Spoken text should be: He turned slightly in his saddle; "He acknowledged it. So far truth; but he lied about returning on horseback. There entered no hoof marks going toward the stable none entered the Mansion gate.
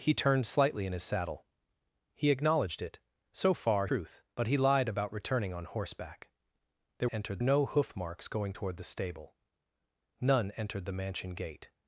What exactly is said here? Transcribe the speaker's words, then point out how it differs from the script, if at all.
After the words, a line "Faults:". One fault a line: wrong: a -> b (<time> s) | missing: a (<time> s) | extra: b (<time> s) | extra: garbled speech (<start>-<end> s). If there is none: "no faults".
He turned slightly in his saddle; "He acknowledged it. So far truth; but he lied about returning on horseback. There entered no hoof marks going toward the stable none entered the Mansion gate.
Faults:
no faults